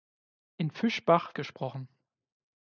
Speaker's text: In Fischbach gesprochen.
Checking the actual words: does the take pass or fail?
pass